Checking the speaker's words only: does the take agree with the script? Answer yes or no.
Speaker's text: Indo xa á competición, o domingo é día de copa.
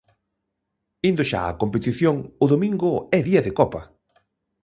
yes